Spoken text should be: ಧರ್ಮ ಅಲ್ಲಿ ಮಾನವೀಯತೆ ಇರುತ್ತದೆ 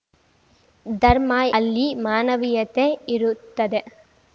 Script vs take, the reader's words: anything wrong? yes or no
no